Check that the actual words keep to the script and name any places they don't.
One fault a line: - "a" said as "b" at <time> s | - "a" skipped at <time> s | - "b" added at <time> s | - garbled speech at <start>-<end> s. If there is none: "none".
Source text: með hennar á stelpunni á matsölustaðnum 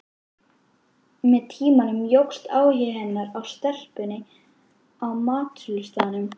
- "tímanum jókst áhugi" added at 1.5 s